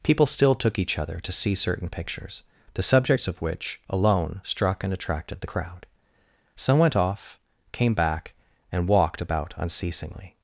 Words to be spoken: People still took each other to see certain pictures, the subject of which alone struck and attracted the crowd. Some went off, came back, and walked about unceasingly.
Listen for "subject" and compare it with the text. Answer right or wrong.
wrong